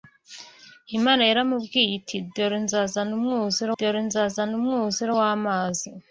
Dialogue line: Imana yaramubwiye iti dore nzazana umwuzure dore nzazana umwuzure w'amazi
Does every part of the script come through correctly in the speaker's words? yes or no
yes